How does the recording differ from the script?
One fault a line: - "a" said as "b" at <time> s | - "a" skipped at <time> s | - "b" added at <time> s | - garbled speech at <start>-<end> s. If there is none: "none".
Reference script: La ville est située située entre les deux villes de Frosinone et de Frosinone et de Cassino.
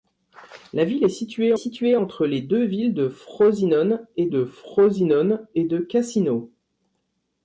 none